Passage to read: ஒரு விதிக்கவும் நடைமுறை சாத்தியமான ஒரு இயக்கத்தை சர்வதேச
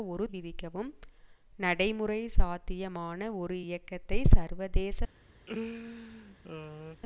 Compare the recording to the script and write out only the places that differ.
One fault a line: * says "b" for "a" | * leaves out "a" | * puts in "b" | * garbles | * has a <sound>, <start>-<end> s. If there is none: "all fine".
* has a laugh, 5.5-7.0 s